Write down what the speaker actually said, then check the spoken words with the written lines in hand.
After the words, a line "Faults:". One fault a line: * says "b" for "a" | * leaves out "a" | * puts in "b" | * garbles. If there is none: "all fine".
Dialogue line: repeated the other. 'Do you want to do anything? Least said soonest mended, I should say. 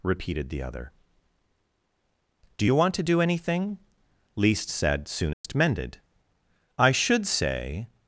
repeated the other. 'Do you want to do anything? Least said soonest mended, I should say.
Faults:
all fine